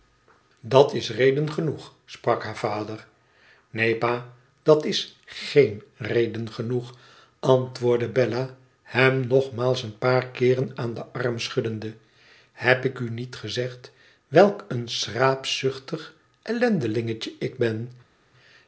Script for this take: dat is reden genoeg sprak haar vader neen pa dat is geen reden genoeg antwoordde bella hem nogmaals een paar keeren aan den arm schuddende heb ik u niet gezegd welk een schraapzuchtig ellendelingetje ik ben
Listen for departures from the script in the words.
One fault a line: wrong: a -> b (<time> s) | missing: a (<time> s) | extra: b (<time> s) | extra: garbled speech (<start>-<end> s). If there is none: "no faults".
no faults